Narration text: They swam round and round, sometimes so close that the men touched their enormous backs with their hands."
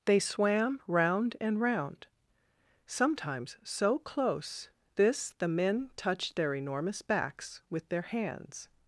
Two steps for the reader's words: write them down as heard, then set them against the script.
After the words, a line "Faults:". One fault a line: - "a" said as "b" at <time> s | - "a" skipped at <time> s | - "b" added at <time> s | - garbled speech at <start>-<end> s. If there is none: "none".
They swam round and round, sometimes so close this the men touched their enormous backs with their hands."
Faults:
- "that" said as "this" at 4.9 s